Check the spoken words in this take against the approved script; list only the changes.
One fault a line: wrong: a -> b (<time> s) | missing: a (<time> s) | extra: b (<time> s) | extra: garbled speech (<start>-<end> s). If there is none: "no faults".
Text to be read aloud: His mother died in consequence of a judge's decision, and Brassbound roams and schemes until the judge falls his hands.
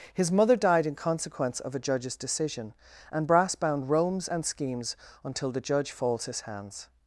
no faults